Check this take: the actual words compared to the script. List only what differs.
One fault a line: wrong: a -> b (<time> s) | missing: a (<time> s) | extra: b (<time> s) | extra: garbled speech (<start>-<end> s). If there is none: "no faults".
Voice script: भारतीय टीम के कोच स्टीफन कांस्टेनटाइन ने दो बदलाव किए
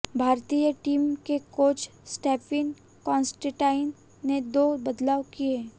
no faults